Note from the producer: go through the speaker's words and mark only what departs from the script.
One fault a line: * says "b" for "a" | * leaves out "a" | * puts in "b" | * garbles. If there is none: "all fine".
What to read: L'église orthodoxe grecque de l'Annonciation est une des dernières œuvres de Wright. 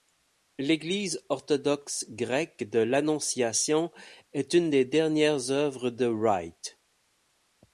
all fine